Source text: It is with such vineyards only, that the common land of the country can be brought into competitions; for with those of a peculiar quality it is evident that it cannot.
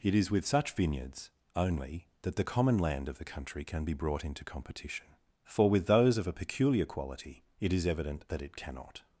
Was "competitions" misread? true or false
true